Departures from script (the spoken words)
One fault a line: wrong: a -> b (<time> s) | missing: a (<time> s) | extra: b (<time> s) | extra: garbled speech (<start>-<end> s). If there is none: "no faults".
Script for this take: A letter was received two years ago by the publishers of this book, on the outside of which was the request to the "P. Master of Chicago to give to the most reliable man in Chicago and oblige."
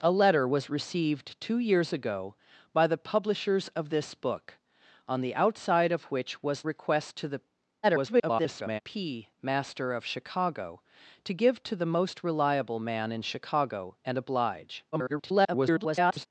missing: the (6.6 s)
extra: garbled speech (7.8-8.8 s)
extra: garbled speech (14.9-16.3 s)